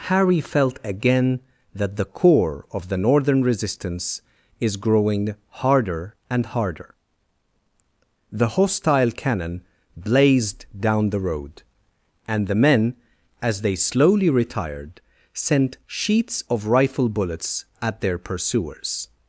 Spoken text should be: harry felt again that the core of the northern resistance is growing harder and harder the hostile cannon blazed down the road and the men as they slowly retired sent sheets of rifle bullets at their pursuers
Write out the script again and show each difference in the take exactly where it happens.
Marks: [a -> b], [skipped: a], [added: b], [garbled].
harry felt again that the core of the northern resistance is growing harder and harder the hostile cannon blazed down the road and the men as they slowly retired sent sheets of rifle bullets at their pursuers